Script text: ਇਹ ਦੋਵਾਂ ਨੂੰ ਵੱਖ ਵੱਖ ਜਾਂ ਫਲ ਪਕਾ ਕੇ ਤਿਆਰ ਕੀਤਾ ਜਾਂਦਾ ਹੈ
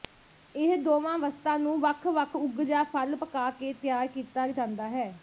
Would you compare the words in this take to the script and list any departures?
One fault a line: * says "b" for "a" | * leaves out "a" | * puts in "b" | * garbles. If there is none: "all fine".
* puts in "ਵਸਤਾਂ"
* puts in "ਉਗ"